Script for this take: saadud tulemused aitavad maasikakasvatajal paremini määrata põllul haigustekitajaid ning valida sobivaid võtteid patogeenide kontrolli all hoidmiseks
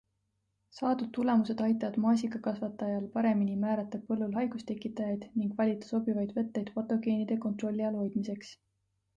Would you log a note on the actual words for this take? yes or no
no